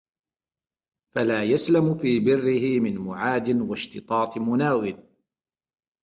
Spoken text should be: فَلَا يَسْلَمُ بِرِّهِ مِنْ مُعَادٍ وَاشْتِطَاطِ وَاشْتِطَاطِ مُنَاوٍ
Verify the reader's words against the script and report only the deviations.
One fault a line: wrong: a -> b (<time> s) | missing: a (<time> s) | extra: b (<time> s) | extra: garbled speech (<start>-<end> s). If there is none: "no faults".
extra: فِي (1.9 s)
missing: وَاشْتِطَاطِ (4.4 s)